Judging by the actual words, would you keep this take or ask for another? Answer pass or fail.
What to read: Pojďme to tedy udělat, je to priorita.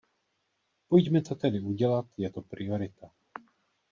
pass